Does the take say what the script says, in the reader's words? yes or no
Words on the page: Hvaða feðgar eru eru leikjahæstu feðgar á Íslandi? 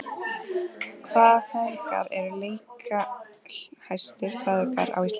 no